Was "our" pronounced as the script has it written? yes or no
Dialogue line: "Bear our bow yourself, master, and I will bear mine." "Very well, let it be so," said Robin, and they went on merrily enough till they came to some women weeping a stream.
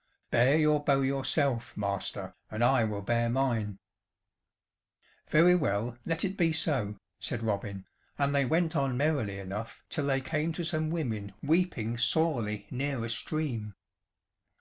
no